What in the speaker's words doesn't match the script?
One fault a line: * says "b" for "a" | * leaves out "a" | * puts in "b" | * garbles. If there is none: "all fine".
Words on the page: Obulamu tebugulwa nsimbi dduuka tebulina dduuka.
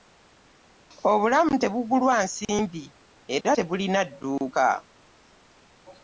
* says "era" for "dduuka"